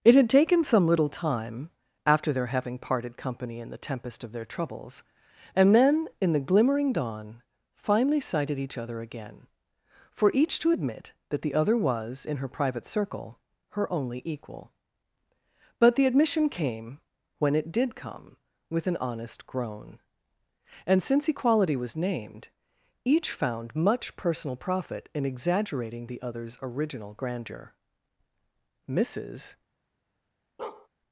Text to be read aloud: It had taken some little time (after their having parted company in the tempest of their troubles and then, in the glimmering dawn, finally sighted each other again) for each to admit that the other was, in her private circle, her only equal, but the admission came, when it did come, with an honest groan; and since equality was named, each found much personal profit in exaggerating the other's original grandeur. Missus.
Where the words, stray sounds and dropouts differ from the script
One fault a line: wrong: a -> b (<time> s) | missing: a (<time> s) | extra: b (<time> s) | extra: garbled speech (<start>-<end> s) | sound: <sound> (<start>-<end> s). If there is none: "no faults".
sound: bark (30.6-30.9 s)